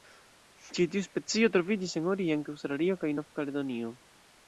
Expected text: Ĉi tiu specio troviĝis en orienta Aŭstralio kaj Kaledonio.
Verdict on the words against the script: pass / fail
fail